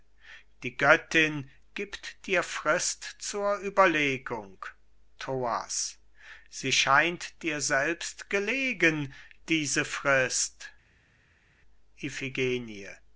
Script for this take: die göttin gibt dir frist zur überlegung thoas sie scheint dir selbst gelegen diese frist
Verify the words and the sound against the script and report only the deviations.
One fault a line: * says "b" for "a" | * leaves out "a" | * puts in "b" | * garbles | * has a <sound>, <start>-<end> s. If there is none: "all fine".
all fine